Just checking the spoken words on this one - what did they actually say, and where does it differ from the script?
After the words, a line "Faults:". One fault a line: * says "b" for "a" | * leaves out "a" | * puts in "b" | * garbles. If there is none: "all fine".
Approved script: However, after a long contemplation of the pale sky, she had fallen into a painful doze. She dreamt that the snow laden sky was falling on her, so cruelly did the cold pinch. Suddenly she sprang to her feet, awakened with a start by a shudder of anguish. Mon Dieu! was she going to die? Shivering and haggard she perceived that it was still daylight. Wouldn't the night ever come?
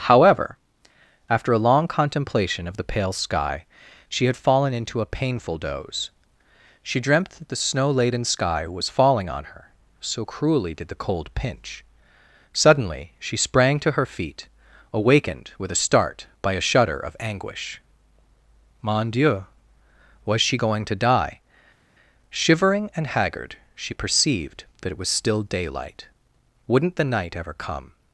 However, after a long contemplation of the pale sky, she had fallen into a painful doze. She dreamt that the snow laden sky was falling on her, so cruelly did the cold pinch. Suddenly she sprang to her feet, awakened with a start by a shudder of anguish. Mon Dieu! was she going to die? Shivering and haggard she perceived that it was still daylight. Wouldn't the night ever come?
Faults:
all fine